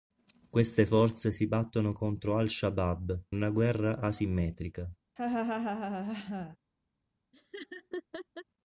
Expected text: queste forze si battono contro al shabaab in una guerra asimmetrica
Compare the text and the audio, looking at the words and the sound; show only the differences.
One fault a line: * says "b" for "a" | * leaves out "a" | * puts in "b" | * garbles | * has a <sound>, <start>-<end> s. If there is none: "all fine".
* leaves out "in"
* has a laugh, 5.2-6.6 s
* has a laugh, 7.3-8.4 s